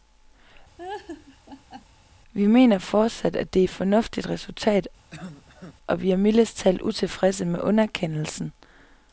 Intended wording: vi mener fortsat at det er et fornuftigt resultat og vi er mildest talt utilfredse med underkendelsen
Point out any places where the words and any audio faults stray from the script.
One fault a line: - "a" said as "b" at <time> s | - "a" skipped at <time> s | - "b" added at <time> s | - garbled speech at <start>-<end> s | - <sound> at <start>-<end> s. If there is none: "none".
- laugh at 0.8-1.9 s
- cough at 5.1-5.8 s